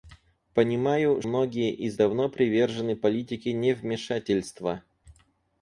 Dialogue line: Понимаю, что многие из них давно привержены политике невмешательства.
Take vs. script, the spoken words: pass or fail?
fail